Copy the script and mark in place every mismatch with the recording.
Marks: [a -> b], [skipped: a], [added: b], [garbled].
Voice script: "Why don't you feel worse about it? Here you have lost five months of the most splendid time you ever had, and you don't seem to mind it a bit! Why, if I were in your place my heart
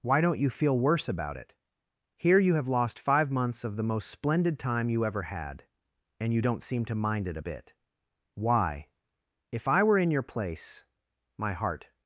"Why don't you feel worse about it? Here you have lost five months of the most splendid time you ever had, and you don't seem to mind it a bit! Why, if I were in your place my heart